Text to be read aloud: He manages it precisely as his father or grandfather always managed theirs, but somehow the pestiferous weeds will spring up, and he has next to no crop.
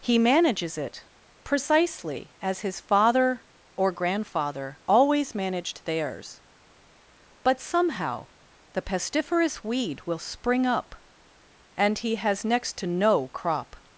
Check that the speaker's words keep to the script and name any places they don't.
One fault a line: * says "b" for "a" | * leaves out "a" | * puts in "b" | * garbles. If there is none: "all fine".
* says "weed" for "weeds"